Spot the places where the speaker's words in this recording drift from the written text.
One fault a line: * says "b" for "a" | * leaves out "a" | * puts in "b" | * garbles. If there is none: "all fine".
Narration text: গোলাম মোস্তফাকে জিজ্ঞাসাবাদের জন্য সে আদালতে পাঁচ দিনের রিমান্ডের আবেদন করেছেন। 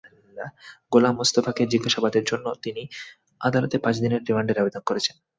* says "তিনি" for "সে"